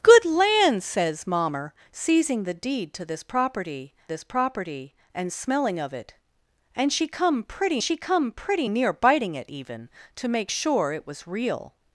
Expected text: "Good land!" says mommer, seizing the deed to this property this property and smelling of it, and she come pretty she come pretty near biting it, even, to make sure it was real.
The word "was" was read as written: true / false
true